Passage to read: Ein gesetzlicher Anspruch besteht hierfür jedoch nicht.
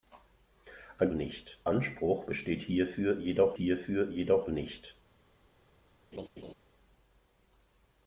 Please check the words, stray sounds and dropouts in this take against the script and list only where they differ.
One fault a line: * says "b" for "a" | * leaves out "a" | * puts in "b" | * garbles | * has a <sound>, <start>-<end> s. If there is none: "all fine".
* says "nicht" for "gesetzlicher"
* puts in "hierfür jedoch"
* has a laugh, 6.1-6.5 s